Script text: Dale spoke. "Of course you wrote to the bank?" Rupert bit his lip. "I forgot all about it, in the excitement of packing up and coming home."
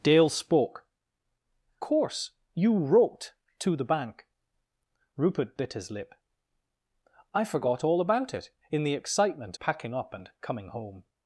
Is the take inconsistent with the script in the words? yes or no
yes